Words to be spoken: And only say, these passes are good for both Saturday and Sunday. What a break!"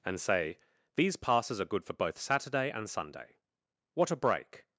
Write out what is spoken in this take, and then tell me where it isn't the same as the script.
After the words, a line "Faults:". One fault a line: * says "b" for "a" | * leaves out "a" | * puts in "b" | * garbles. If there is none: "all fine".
And say, these passes are good for both Saturday and Sunday. What a break!"
Faults:
* leaves out "only"